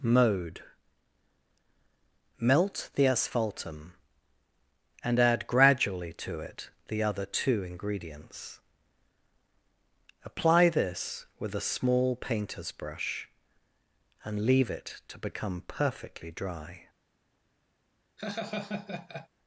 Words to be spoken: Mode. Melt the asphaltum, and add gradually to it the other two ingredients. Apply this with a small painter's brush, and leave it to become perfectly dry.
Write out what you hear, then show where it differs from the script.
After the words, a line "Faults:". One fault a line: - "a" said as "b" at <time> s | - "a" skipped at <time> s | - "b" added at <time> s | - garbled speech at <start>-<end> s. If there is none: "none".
Mode. Melt the asphaltum, and add gradually to it the other two ingredients. Apply this with a small painter's brush, and leave it to become perfectly dry.
Faults:
none